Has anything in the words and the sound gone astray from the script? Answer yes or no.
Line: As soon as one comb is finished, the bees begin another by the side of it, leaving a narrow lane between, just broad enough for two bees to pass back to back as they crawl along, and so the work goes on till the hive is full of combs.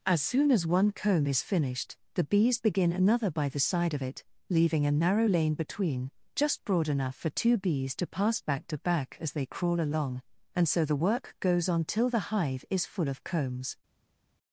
no